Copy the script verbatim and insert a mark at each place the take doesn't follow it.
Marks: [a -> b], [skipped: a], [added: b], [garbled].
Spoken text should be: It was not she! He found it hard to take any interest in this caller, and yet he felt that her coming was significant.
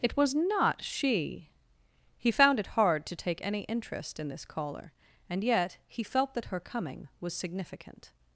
It was not she! He found it hard to take any interest in this caller, and yet he felt that her coming was significant.